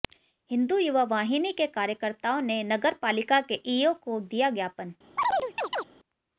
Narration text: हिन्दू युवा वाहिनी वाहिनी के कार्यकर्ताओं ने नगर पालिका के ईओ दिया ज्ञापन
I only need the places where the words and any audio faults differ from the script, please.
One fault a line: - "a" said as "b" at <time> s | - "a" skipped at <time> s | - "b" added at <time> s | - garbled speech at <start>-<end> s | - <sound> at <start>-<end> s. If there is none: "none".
- "वाहिनी" skipped at 1.5 s
- "को" added at 4.1 s
- chirp at 5.2-5.8 s